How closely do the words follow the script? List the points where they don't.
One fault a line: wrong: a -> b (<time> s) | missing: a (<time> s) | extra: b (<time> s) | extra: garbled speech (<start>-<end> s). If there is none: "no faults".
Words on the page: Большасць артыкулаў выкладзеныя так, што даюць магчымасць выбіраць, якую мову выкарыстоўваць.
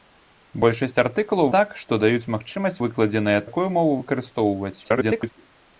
missing: выкладзеныя (1.5 s)
wrong: выбіраць -> выкладзеныя (2.9 s)
extra: garbled speech (4.8-5.3 s)